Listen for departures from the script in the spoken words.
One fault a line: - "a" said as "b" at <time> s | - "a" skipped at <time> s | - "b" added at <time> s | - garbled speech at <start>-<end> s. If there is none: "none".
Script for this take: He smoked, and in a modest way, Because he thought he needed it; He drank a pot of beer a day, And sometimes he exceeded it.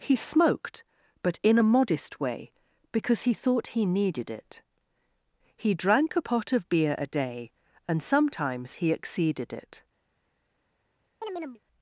- "and" said as "but" at 1.2 s